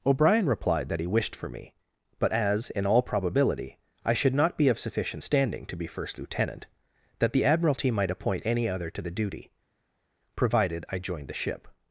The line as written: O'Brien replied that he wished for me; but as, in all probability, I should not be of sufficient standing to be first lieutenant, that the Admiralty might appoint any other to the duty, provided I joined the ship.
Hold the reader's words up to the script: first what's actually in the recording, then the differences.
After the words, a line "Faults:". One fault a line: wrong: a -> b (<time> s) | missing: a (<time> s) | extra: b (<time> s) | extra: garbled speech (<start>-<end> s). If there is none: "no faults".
O'Brien replied that he wished for me; but as, in all probability, I should not be of sufficient standing to be first lieutenant, that the Admiralty might appoint any other to the duty, provided I joined the ship.
Faults:
no faults